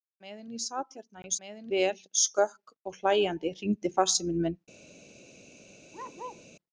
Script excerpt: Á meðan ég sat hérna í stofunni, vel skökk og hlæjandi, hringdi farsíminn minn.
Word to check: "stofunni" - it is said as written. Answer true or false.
false